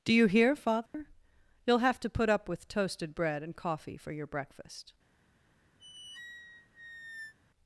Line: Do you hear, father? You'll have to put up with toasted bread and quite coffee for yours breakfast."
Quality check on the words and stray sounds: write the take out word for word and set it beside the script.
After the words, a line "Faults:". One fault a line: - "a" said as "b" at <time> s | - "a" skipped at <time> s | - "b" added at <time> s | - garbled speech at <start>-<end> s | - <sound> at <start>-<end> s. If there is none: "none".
Do you hear, father? You'll have to put up with toasted bread and coffee for your breakfast."
Faults:
- dropout at 0.9-0.9 s
- "quite" skipped at 3.5 s
- "yours" said as "your" at 4.1 s
- squeak at 5.8-7.3 s